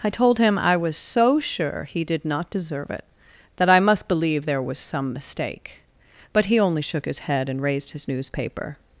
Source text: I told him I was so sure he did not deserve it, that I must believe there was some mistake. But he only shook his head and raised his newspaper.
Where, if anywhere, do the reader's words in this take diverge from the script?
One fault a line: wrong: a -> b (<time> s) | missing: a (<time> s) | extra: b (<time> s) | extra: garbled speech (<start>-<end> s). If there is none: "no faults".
no faults